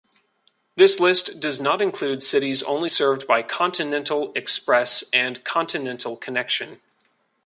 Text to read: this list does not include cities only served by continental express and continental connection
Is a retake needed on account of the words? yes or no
no